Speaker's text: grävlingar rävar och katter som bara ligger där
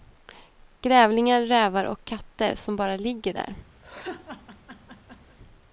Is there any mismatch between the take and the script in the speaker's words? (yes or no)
no